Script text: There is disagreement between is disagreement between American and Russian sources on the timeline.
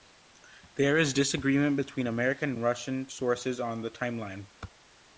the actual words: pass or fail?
fail